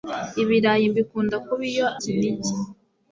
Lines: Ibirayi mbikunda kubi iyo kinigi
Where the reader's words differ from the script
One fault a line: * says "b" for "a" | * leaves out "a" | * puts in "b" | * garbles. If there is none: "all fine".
all fine